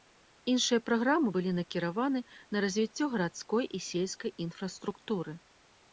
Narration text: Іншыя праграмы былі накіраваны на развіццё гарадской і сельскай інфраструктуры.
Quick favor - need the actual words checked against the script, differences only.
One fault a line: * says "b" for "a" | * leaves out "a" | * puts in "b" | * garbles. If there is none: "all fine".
all fine